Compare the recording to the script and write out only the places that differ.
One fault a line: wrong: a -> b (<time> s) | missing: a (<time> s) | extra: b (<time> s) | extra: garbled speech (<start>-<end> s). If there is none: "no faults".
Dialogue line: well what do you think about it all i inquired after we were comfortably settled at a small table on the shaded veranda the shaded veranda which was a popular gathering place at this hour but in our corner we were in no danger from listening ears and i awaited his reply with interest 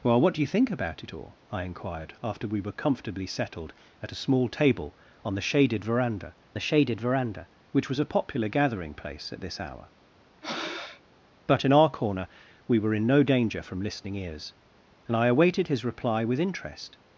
no faults